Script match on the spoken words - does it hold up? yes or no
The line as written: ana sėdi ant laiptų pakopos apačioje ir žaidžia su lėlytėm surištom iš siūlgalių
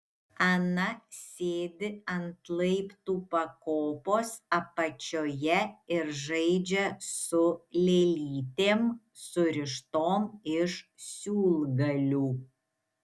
yes